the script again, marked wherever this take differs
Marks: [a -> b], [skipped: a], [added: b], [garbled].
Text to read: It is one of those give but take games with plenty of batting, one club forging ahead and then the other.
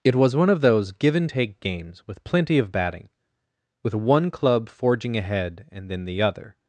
It [is -> was] one of those give [but -> and] take games with plenty of batting, [added: with] one club forging ahead and then the other.